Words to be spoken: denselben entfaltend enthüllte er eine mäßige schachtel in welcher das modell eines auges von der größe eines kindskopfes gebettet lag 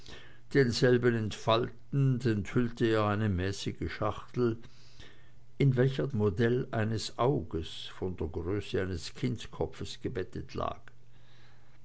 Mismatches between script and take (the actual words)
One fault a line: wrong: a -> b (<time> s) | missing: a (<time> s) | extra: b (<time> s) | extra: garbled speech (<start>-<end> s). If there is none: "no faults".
missing: das (6.1 s)